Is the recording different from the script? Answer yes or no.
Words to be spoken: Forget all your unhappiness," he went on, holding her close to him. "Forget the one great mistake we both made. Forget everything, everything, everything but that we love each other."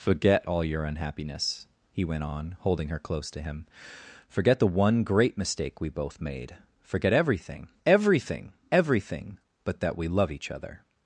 no